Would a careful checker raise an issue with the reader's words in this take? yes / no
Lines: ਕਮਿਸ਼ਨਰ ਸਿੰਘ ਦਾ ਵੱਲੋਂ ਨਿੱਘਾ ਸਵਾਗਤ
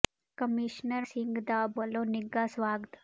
no